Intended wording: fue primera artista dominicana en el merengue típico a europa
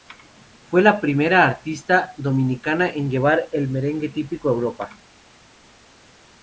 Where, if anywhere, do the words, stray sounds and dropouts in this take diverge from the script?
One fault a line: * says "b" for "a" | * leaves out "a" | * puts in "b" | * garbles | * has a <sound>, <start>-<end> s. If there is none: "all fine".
* puts in "la"
* puts in "llevar"